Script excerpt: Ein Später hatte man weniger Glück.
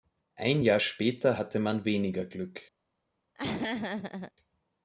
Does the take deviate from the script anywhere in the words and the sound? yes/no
yes